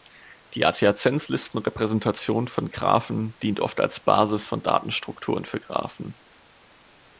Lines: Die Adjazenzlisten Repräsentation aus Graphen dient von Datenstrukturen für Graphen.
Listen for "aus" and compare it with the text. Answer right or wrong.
wrong